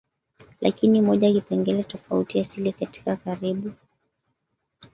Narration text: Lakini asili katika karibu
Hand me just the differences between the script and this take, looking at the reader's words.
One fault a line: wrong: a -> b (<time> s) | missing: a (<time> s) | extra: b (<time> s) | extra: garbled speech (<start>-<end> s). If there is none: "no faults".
extra: moja kipengele tofauti (1.0 s)